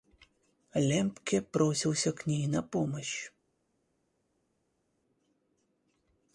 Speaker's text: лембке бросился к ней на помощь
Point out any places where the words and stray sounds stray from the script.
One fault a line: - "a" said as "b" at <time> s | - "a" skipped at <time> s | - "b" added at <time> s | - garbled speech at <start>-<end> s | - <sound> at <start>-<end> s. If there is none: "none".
none